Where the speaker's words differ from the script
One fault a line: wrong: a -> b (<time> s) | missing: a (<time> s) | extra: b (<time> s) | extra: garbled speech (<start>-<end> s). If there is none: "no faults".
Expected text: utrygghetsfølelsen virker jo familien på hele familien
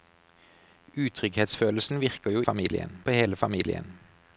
no faults